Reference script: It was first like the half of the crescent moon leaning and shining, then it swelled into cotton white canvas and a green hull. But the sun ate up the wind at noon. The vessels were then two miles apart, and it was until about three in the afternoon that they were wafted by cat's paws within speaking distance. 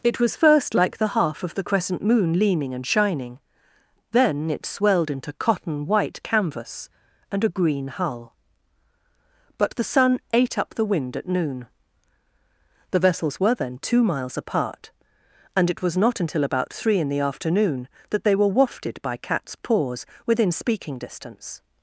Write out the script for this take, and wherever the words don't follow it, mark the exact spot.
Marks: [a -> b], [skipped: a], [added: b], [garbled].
It was first like the half of the crescent moon leaning and shining, then it swelled into cotton white canvas and a green hull. But the sun ate up the wind at noon. The vessels were then two miles apart, and it was [added: not] until about three in the afternoon that they were wafted by cat's paws within speaking distance.